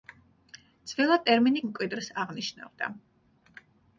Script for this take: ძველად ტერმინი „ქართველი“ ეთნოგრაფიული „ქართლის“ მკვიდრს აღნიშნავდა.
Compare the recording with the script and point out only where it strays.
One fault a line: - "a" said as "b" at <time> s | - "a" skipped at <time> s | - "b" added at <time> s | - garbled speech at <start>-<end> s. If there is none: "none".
- "ქართველი ეთნოგრაფიული ქართლის" skipped at 1.6 s